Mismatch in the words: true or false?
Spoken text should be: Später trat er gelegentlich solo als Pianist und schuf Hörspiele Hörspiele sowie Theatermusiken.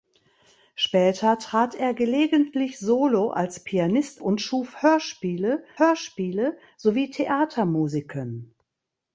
false